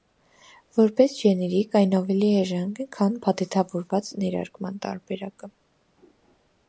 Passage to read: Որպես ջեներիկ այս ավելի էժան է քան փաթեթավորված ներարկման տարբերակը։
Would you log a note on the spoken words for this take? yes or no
yes